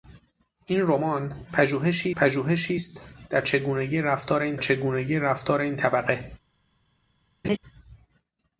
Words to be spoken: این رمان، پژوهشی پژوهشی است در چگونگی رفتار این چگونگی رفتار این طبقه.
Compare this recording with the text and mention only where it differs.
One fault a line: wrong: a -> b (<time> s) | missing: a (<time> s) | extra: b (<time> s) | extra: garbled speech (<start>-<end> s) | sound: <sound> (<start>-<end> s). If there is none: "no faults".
sound: laugh (7.4-7.6 s)